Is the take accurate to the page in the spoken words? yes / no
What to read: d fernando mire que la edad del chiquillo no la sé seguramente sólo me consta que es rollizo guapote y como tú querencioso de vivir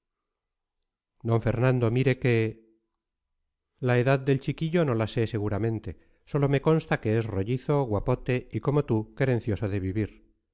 yes